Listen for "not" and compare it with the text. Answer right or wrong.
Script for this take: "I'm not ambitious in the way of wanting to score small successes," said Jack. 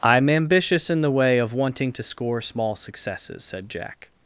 wrong